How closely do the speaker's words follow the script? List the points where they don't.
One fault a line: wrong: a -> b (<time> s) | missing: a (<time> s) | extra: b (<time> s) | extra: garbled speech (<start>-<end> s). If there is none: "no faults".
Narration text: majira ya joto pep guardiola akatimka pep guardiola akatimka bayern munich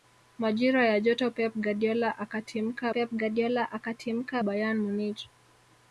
no faults